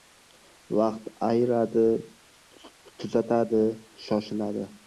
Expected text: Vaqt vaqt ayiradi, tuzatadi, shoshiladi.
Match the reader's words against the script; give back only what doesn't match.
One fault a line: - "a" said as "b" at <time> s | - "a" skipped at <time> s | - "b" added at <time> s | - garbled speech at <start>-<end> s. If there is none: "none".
- "vaqt" skipped at 1.1 s